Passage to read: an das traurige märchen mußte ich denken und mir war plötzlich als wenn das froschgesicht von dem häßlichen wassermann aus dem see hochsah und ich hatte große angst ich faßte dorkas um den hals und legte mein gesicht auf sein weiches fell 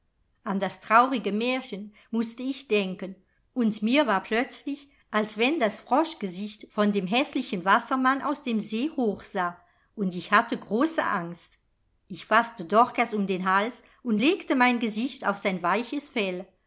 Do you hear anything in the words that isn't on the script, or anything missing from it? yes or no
no